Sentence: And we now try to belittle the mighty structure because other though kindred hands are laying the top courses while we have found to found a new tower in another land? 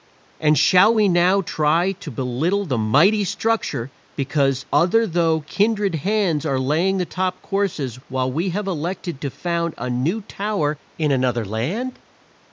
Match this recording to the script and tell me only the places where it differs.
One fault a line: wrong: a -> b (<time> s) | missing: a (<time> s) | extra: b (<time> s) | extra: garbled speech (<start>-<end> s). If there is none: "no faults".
extra: shall (0.6 s)
wrong: found -> elected (8.7 s)